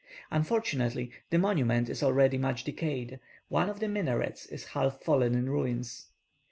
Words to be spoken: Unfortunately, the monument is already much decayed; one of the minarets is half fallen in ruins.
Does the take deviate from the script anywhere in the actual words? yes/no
no